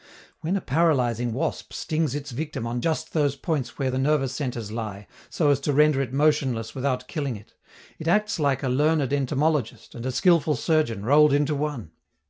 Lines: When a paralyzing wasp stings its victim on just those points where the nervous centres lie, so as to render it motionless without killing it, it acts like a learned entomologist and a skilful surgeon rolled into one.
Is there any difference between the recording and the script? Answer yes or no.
no